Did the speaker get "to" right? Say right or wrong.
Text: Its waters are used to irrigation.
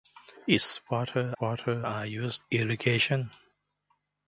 wrong